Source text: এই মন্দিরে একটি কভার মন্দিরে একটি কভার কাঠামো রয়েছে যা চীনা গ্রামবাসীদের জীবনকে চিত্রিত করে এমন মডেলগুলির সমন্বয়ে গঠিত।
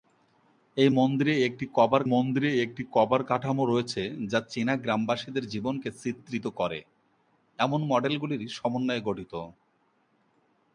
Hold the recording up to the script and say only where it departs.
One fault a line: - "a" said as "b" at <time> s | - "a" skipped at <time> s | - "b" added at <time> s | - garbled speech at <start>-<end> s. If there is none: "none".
none